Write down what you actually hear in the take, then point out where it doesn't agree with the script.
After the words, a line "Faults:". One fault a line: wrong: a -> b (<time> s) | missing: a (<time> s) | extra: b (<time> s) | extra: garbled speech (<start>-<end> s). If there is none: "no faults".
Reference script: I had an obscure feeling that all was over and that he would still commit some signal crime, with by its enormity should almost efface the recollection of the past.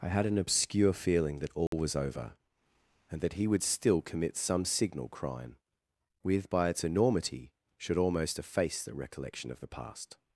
I had an obscure feeling that all was over and that he would still commit some signal crime, with by its enormity should almost efface the recollection of the past.
Faults:
no faults